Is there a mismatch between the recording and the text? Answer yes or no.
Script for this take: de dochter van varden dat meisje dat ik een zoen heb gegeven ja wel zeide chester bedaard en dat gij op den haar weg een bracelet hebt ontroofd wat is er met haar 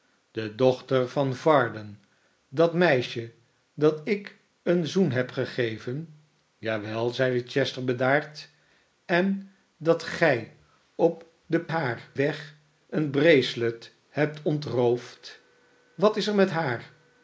no